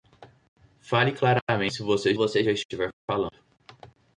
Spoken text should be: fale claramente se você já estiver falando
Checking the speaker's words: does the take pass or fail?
fail